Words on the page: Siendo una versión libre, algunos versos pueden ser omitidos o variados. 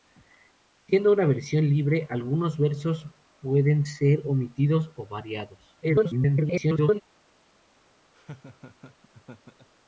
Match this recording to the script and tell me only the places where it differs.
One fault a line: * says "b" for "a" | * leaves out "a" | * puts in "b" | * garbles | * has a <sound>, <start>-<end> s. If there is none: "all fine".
* garbles
* has a laugh, 8.1-9.7 s